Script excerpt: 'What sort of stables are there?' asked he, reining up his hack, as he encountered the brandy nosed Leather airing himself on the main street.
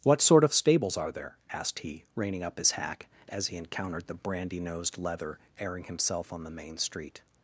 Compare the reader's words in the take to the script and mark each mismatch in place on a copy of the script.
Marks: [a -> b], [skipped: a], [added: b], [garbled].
'What sort of stables are there?' asked he, reining up his hack, as he encountered the brandy nosed Leather airing himself on the main street.